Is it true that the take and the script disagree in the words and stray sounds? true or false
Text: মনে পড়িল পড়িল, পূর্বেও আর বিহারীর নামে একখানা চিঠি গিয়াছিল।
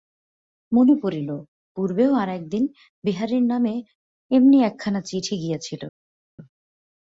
true